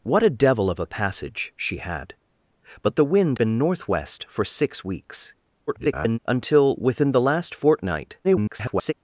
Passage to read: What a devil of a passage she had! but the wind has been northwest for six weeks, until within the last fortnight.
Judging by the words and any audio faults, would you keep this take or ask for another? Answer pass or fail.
fail